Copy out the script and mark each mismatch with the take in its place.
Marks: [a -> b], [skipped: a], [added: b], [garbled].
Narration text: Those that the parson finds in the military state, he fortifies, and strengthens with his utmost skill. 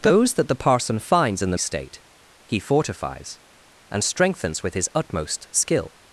Those that the parson finds in the [skipped: military] state, he fortifies, and strengthens with his utmost skill.